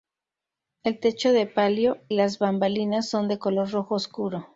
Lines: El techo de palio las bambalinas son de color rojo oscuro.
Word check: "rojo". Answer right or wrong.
right